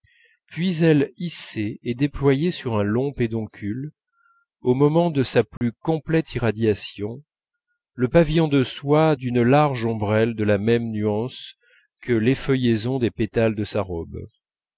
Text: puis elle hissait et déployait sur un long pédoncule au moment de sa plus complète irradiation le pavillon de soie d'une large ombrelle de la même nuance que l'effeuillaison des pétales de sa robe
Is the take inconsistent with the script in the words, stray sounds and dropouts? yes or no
yes